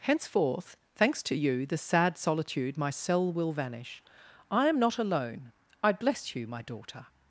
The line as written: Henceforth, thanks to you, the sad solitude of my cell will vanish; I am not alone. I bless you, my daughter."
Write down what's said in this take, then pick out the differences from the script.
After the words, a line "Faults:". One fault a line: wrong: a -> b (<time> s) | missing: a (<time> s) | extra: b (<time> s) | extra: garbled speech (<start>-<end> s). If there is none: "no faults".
Henceforth, thanks to you, the sad solitude my cell will vanish; I am not alone. I bless you, my daughter."
Faults:
missing: of (2.8 s)